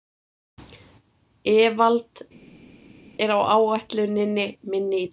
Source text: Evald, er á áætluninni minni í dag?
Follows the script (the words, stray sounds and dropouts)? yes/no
yes